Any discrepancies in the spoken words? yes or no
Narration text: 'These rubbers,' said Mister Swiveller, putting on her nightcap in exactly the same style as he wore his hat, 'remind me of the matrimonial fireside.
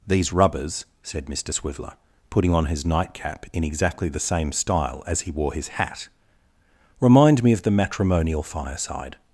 yes